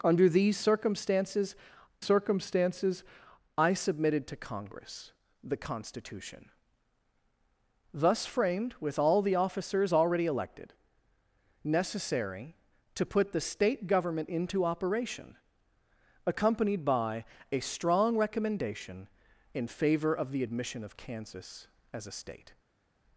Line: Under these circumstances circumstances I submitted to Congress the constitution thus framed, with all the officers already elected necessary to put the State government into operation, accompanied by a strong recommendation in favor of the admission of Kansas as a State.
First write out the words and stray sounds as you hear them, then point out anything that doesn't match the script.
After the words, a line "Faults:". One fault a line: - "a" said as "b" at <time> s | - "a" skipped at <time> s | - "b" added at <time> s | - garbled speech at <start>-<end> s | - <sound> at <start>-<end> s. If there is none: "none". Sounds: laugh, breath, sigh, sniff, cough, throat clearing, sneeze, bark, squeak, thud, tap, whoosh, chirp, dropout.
Under these circumstances circumstances I submitted to Congress the constitution thus framed, with all the officers already elected necessary to put the State government into operation, accompanied by a strong recommendation in favor of the admission of Kansas as a State.
Faults:
none